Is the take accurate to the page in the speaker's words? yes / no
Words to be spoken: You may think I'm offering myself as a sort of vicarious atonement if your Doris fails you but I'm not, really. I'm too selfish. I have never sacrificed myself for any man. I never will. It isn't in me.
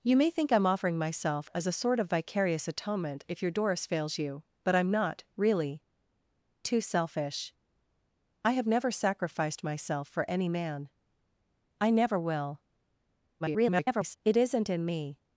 no